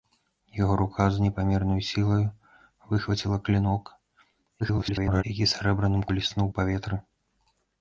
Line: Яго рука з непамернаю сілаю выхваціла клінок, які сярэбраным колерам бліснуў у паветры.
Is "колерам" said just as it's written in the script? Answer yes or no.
no